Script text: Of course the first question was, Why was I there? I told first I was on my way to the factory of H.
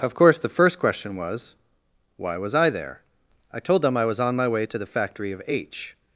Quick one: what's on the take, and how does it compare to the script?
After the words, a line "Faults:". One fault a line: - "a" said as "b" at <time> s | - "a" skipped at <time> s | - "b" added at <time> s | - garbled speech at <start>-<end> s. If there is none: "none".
Of course the first question was, Why was I there? I told them I was on my way to the factory of H.
Faults:
- "first" said as "them" at 3.8 s